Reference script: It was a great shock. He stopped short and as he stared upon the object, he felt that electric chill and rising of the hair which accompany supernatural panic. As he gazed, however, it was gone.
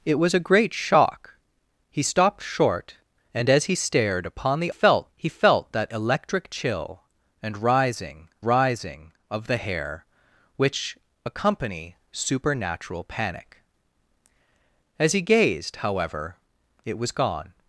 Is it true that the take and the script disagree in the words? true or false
true